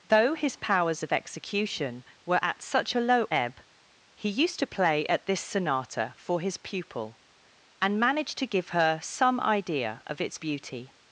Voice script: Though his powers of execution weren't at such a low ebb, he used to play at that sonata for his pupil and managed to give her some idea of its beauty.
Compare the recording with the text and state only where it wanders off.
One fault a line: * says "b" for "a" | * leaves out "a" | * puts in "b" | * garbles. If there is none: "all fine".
* says "were" for "weren't"
* says "this" for "that"